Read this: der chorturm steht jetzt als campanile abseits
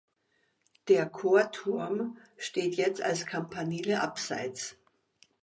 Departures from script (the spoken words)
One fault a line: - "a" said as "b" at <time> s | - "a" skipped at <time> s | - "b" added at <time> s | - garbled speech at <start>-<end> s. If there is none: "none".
none